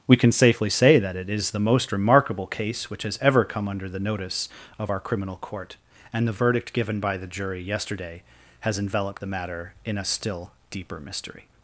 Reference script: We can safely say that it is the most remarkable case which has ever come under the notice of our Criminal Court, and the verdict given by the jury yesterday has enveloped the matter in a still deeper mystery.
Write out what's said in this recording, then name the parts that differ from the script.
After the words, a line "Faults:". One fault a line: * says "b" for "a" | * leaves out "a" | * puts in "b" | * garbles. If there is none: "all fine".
We can safely say that it is the most remarkable case which has ever come under the notice of our Criminal Court, and the verdict given by the jury yesterday has enveloped the matter in a still deeper mystery.
Faults:
all fine